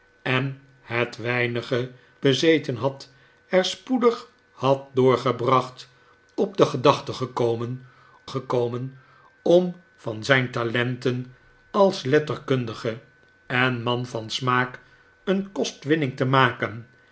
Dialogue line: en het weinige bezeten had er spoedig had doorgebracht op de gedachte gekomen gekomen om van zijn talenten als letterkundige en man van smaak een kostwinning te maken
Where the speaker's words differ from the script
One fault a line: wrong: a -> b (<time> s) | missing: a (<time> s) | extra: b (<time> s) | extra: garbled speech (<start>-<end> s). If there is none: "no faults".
no faults